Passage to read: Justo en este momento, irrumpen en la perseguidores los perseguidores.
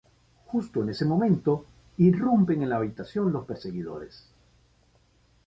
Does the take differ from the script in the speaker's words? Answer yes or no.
yes